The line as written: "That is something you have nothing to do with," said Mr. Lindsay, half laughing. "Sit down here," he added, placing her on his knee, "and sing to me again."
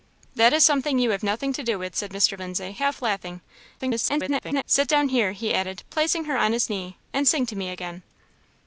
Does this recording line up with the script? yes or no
no